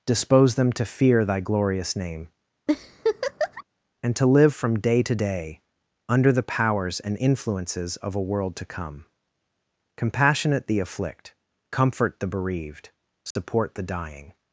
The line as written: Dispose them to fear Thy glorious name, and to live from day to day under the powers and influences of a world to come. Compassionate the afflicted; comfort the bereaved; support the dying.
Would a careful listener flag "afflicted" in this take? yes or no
yes